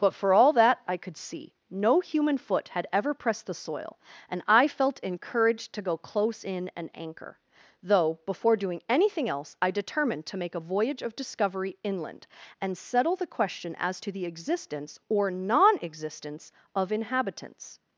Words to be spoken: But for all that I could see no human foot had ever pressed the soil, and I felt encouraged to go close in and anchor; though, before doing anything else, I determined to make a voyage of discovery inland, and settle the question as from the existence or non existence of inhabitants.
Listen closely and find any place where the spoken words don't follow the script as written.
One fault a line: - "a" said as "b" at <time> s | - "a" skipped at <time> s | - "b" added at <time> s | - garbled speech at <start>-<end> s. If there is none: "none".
- "from" said as "to" at 14.0 s